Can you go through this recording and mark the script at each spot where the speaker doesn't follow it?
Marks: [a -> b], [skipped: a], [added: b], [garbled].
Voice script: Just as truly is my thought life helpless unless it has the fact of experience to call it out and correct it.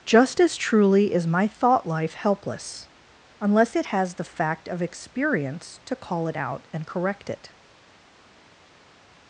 Just as truly is my thought life helpless unless it has the fact of experience to call it out and correct it.